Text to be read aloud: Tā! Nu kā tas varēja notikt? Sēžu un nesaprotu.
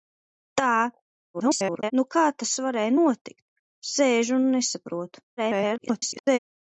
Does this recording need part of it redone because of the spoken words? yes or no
yes